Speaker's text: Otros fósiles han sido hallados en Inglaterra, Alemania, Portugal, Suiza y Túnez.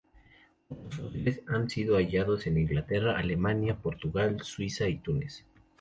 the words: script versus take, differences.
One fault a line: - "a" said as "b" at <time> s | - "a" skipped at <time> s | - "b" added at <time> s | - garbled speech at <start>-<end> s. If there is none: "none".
none